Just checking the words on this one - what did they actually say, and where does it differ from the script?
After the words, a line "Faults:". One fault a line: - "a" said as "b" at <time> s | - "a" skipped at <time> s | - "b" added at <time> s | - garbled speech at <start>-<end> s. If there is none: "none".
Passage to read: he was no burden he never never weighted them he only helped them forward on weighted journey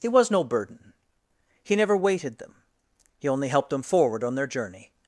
he was no burden he never weighted them he only helped them forward on their journey
Faults:
- "never" skipped at 1.9 s
- "weighted" said as "their" at 4.4 s